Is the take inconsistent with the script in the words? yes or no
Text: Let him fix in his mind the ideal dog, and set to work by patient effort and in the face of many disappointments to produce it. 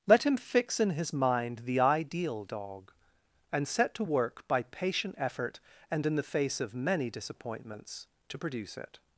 no